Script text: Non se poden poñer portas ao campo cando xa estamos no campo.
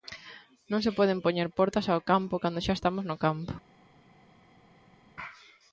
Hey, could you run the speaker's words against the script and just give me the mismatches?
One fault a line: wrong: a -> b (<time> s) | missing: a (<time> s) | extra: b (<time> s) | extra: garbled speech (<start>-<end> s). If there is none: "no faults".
no faults